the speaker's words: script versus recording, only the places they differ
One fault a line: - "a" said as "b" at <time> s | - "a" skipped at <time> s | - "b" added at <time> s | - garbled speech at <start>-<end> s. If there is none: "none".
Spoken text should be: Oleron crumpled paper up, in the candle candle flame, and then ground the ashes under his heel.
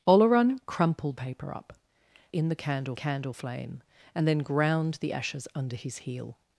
none